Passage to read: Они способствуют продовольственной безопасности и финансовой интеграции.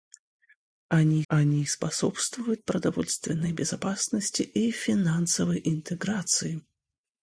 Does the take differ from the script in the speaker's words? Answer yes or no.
yes